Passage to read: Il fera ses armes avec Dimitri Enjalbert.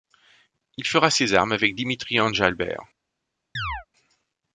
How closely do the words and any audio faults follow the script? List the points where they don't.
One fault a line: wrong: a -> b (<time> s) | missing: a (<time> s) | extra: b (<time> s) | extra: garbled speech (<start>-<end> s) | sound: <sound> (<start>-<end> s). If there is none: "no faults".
sound: chirp (3.6-3.9 s)